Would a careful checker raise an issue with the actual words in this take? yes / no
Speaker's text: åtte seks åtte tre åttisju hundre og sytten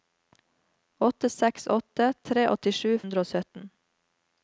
no